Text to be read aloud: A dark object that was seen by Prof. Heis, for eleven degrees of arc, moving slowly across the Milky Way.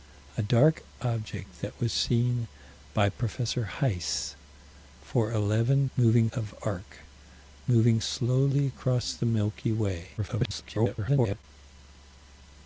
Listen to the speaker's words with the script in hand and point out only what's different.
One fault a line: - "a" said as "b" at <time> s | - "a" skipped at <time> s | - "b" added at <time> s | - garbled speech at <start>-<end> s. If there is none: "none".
- "degrees" said as "moving" at 6.0 s
- garbled speech at 10.2-11.4 s